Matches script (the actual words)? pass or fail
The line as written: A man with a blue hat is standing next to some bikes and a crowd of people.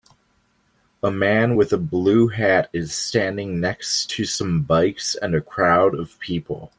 pass